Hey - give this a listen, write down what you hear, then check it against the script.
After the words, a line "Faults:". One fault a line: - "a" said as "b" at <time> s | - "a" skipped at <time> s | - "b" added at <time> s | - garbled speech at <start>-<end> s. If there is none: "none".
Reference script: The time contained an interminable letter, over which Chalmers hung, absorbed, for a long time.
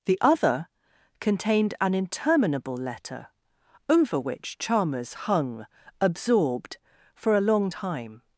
The other contained an interminable letter, over which Chalmers hung, absorbed, for a long time.
Faults:
- "time" said as "other" at 0.2 s